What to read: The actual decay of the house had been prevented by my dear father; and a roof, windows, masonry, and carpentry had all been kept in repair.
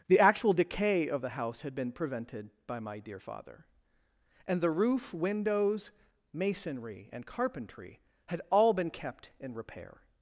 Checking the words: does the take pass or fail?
fail